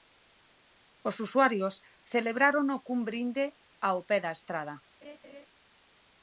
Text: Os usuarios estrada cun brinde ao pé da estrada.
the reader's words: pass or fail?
fail